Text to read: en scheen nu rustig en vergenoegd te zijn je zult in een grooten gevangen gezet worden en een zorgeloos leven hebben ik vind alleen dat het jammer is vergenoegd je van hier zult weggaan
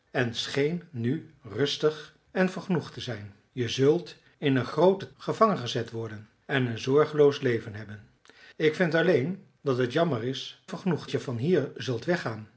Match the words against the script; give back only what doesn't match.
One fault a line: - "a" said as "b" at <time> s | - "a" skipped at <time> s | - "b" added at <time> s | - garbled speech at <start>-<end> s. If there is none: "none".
none